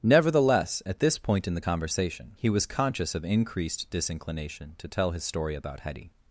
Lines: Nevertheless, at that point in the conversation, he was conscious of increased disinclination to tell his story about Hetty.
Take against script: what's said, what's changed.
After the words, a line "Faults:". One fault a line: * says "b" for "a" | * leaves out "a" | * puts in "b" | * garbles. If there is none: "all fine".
Nevertheless, at this point in the conversation, he was conscious of increased disinclination to tell his story about Hetty.
Faults:
* says "this" for "that"